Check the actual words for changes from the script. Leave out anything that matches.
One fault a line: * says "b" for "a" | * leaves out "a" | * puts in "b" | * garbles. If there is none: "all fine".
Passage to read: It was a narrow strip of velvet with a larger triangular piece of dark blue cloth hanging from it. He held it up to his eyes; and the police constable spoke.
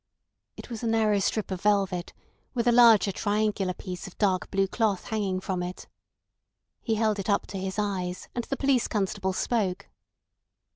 all fine